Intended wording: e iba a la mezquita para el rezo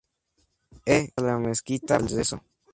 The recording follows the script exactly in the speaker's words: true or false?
false